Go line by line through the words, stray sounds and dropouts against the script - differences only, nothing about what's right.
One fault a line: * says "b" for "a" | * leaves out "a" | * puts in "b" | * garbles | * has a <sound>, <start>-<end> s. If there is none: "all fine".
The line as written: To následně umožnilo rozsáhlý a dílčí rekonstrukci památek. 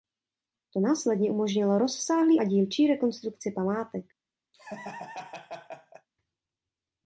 * has a laugh, 4.5-6.1 s